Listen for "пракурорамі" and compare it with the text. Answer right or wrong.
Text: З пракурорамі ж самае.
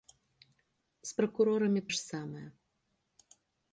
right